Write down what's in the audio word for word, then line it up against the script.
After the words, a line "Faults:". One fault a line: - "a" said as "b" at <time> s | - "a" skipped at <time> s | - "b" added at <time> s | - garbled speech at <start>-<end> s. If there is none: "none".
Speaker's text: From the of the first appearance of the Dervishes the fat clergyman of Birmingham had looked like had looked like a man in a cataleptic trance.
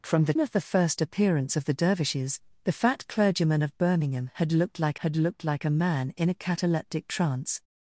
From the of the first appearance of the Dervishes the fat clergyman of Birmingham had looked like had looked like a man in a cataleptic trance.
Faults:
none